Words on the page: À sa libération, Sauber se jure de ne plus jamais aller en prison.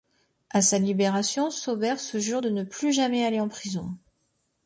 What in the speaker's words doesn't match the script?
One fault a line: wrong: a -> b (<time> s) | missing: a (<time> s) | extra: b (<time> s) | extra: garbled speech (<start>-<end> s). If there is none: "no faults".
no faults